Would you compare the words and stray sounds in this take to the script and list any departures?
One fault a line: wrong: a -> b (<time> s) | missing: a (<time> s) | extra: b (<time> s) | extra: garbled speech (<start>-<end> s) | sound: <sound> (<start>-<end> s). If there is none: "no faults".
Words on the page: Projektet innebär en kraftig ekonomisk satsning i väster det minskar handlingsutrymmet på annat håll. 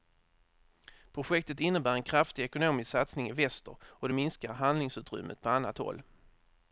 extra: och (3.8 s)